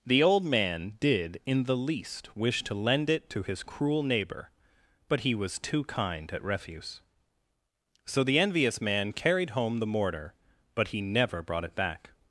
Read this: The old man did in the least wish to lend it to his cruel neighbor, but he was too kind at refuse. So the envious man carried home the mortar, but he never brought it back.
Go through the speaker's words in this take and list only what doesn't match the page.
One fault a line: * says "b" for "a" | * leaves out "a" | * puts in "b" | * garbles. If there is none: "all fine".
all fine